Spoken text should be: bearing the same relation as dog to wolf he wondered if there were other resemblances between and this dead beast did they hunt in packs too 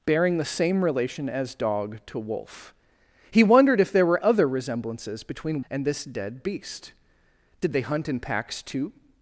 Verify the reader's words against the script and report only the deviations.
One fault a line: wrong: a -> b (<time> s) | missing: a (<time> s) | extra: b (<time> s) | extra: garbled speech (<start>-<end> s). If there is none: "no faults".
no faults